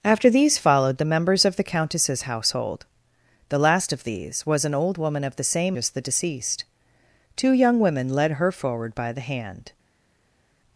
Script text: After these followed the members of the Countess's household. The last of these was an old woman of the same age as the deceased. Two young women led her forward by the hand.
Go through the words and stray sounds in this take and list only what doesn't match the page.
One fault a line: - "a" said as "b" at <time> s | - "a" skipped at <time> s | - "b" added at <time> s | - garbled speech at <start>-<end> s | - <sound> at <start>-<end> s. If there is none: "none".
- "age" skipped at 5.8 s